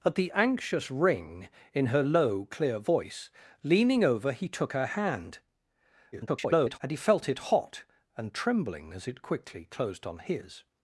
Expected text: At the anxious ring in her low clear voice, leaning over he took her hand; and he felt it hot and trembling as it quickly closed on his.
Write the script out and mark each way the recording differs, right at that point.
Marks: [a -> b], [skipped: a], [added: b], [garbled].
At the anxious ring in her low clear voice, leaning over he took her hand; [garbled] and he felt it hot and trembling as it quickly closed on his.